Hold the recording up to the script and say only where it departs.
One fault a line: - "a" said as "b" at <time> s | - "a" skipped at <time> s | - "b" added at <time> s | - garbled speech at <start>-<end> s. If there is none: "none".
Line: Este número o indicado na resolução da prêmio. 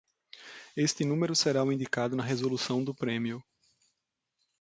- "será" added at 1.4 s
- "da" said as "do" at 2.8 s